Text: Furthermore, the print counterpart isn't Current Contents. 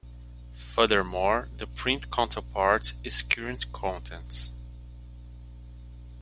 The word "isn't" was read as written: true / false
false